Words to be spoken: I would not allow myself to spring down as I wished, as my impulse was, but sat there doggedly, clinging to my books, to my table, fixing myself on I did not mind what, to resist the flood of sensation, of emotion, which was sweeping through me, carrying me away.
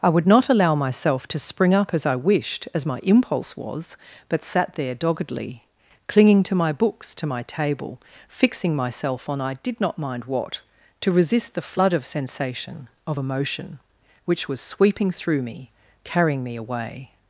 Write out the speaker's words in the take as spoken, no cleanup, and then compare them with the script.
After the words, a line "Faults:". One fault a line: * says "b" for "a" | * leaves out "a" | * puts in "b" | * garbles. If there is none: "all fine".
I would not allow myself to spring up as I wished, as my impulse was, but sat there doggedly, clinging to my books, to my table, fixing myself on I did not mind what, to resist the flood of sensation, of emotion, which was sweeping through me, carrying me away.
Faults:
* says "up" for "down"